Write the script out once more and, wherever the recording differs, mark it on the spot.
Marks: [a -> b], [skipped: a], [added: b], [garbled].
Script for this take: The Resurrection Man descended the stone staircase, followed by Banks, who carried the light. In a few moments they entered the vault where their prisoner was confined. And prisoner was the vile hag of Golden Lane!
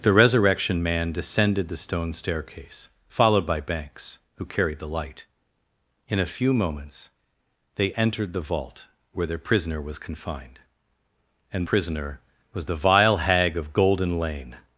The Resurrection Man descended the stone staircase, followed by Banks, who carried the light. In a few moments they entered the vault where their prisoner was confined. And prisoner was the vile hag of Golden Lane!